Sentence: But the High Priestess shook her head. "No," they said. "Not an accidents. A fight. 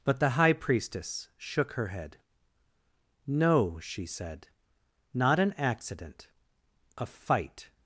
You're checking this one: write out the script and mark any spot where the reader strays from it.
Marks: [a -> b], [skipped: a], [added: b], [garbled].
But the High Priestess shook her head. "No," [they -> she] said. "Not an [accidents. -> accident] A fight.